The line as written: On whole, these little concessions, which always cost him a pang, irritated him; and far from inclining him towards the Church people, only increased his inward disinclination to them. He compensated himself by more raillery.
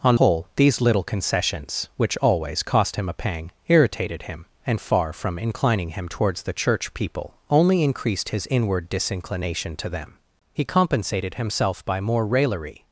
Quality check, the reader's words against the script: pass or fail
pass